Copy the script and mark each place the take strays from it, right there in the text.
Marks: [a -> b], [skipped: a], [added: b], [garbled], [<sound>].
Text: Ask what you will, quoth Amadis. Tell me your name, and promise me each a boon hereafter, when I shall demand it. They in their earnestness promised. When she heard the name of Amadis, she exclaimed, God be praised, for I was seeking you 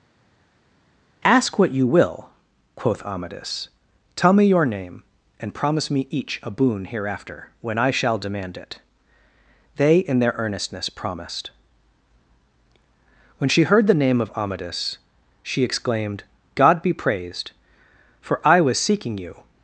Ask what you will, quoth Amadis. Tell me your name, and promise me each a boon hereafter, when I shall demand it. They in their earnestness promised. When she heard the name of Amadis, she exclaimed, God be praised, for I was seeking you